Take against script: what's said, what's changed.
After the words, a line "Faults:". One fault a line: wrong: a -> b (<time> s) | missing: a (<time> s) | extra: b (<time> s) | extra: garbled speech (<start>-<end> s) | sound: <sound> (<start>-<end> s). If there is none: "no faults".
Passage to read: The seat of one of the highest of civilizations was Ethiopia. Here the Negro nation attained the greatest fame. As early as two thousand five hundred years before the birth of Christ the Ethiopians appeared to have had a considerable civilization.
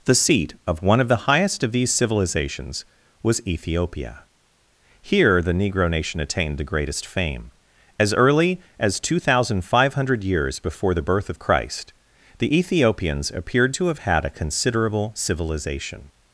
The seat of one of the highest of these civilizations was Ethiopia. Here the Negro nation attained the greatest fame. As early as two thousand five hundred years before the birth of Christ the Ethiopians appeared to have had a considerable civilization.
Faults:
extra: these (1.7 s)